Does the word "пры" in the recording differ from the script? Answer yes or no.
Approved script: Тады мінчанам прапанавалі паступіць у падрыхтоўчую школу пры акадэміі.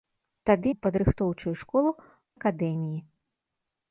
yes